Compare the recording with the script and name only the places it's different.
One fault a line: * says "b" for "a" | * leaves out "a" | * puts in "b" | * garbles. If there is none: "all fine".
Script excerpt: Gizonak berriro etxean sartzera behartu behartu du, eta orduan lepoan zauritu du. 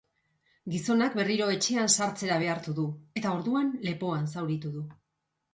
* leaves out "behartu"